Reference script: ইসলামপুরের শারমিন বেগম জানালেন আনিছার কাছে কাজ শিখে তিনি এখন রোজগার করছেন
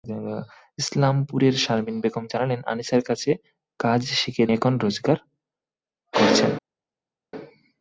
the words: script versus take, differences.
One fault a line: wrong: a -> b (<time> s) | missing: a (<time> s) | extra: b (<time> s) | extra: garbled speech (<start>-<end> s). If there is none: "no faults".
missing: তিনি (4.4 s)